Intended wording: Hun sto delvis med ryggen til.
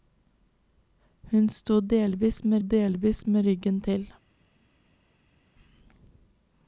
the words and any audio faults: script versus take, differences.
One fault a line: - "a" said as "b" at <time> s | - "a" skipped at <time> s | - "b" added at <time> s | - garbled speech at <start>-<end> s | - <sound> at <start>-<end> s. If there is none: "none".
- "delvis med" added at 2.6 s